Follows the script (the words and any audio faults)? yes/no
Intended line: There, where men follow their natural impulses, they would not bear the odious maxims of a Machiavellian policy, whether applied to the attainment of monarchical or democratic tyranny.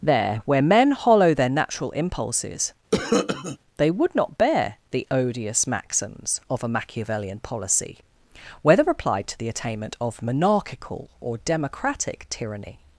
no